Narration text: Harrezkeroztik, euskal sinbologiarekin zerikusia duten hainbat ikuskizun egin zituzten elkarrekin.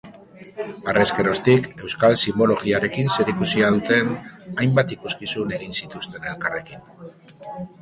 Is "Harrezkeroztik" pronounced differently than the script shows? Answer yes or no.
no